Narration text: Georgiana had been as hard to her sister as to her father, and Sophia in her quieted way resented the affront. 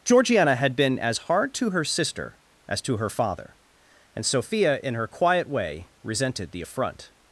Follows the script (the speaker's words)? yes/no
no